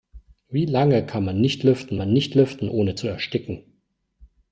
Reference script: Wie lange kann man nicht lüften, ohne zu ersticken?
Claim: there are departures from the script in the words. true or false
true